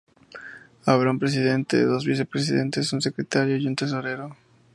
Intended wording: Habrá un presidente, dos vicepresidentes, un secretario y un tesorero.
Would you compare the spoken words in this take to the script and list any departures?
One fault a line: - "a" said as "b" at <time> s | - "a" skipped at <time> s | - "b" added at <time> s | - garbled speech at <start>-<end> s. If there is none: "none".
none